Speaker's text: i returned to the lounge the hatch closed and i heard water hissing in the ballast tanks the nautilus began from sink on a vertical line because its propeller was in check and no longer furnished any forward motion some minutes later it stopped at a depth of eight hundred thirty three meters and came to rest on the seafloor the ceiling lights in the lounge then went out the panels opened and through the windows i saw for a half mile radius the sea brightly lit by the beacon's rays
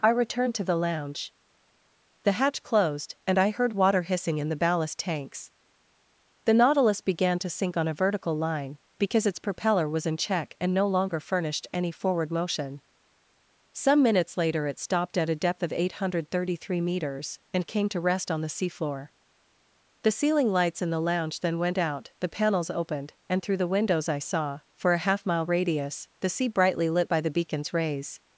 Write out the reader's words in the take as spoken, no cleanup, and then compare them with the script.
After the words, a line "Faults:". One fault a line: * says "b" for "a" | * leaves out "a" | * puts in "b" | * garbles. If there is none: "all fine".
i returned to the lounge the hatch closed and i heard water hissing in the ballast tanks the nautilus began to sink on a vertical line because its propeller was in check and no longer furnished any forward motion some minutes later it stopped at a depth of eight hundred thirty three meters and came to rest on the seafloor the ceiling lights in the lounge then went out the panels opened and through the windows i saw for a half mile radius the sea brightly lit by the beacon's rays
Faults:
* says "to" for "from"